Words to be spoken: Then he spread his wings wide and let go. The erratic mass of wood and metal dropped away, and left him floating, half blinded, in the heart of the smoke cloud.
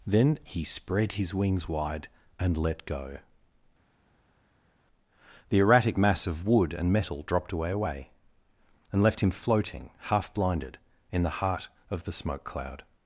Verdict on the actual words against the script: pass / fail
fail